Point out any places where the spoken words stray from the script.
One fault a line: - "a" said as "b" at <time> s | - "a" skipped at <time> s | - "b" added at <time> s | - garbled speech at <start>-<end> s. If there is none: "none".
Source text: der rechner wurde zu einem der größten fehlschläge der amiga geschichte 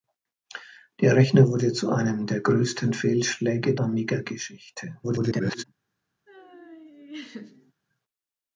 - "der" skipped at 3.8 s
- garbled speech at 5.0-5.6 s